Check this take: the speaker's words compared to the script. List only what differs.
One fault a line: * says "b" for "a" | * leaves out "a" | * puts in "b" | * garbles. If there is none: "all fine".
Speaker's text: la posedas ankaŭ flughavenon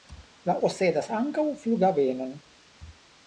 all fine